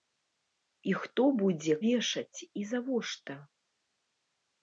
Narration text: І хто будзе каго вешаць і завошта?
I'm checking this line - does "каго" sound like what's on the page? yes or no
no